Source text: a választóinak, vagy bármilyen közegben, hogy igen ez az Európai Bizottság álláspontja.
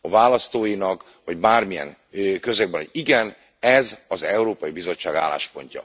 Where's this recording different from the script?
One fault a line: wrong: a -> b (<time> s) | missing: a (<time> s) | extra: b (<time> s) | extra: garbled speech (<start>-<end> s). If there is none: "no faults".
no faults